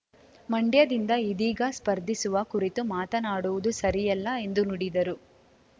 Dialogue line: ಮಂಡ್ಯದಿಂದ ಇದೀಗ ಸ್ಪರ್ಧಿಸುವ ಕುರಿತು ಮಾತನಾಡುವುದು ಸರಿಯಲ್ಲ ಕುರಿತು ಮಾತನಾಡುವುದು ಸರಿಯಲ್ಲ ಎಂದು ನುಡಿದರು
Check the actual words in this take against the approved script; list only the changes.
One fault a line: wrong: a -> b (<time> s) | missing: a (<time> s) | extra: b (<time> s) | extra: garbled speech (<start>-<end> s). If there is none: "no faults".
missing: ಕುರಿತು ಮಾತನಾಡುವುದು ಸರಿಯಲ್ಲ (4.3 s)